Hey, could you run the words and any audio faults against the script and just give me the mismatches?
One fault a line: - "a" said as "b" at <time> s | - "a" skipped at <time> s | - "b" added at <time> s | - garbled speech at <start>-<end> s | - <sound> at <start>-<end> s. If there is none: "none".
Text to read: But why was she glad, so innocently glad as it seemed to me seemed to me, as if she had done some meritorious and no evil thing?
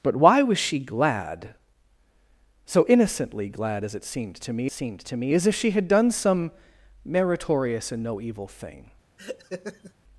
- laugh at 9.2-9.9 s